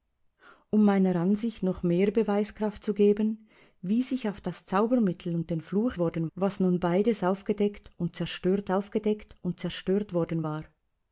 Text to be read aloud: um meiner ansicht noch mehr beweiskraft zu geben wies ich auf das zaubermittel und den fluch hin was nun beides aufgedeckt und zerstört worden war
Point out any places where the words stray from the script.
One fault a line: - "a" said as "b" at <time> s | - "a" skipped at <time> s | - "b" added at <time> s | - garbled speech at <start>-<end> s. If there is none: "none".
- "hin" said as "worden" at 6.0 s
- "aufgedeckt und zerstört" added at 8.7 s